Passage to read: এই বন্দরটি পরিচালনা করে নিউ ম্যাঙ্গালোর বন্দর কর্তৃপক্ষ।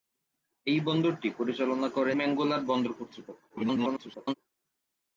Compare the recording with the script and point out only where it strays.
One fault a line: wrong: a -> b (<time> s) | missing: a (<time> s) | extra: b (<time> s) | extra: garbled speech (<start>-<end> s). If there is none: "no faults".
missing: নিউ (2.1 s)
extra: garbled speech (3.5-4.3 s)